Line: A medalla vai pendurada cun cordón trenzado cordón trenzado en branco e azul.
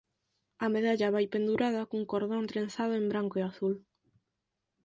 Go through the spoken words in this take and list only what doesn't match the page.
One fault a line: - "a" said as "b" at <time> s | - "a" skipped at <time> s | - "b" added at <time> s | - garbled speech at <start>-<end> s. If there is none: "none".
- "cordón trenzado" skipped at 2.9 s